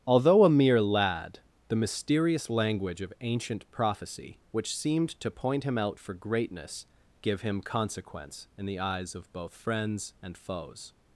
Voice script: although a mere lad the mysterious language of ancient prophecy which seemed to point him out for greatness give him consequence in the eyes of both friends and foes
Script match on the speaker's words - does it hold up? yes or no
yes